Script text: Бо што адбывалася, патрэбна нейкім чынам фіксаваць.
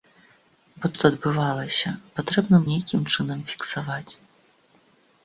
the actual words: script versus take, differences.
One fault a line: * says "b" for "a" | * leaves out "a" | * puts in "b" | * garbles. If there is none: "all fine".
all fine